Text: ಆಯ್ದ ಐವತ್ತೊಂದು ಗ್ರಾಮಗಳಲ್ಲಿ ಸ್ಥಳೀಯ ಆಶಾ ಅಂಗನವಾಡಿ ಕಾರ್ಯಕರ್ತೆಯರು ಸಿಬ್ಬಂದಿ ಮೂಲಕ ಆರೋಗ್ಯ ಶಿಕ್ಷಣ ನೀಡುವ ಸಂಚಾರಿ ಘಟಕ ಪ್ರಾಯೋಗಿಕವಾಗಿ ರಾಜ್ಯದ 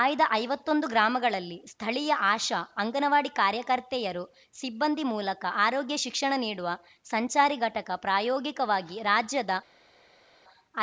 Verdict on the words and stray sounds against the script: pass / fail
pass